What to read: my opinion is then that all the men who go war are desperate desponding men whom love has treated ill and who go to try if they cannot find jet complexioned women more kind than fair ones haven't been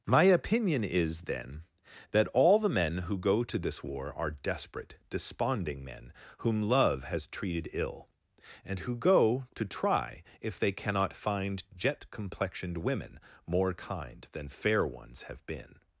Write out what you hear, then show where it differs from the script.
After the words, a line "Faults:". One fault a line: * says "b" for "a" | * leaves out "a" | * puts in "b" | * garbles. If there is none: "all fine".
my opinion is then that all the men who go to this war are desperate desponding men whom love has treated ill and who go to try if they cannot find jet complexioned women more kind than fair ones have been
Faults:
* puts in "to this"
* says "have" for "haven't"